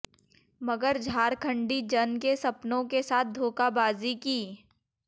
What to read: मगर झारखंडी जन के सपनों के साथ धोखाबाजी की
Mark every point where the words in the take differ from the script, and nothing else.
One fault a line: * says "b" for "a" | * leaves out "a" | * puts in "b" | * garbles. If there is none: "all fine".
all fine